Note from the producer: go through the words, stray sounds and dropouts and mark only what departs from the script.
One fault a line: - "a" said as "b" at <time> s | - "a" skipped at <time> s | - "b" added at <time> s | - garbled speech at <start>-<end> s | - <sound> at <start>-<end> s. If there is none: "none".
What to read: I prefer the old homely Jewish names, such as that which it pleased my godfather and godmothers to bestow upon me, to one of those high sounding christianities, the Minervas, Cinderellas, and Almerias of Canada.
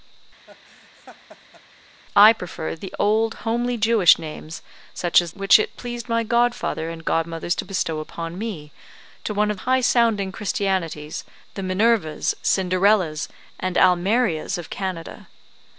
- laugh at 0.5-1.6 s
- "that" skipped at 5.3 s
- "those" skipped at 9.6 s